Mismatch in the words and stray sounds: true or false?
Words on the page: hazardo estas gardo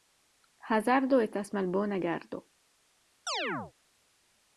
true